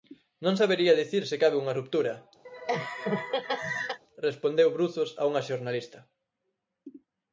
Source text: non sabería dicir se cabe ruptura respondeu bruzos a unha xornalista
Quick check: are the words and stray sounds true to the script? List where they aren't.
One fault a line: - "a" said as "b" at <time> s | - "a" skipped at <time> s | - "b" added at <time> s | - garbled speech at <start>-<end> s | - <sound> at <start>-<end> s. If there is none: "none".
- "unha" added at 1.6 s
- laugh at 2.4-4.0 s